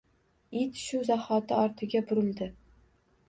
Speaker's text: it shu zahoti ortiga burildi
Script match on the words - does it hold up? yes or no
yes